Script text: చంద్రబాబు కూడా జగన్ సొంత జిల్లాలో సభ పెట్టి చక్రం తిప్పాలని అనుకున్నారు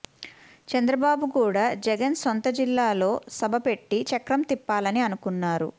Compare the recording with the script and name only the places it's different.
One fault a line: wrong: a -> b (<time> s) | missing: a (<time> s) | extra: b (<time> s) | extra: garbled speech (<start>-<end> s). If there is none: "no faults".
no faults